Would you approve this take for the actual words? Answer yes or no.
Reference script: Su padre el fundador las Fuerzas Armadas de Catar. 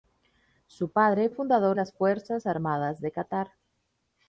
yes